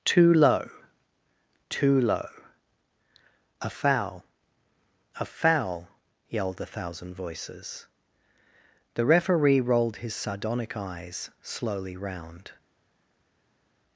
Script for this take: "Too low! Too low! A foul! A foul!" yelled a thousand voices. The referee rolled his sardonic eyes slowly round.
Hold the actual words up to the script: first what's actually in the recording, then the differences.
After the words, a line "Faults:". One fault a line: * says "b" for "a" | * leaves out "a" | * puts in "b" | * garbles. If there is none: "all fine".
"Too low! Too low! A foul! A foul!" yelled a thousand voices. The referee rolled his sardonic eyes slowly round.
Faults:
all fine